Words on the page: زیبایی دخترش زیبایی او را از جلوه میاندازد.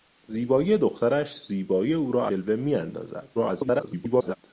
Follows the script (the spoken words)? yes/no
no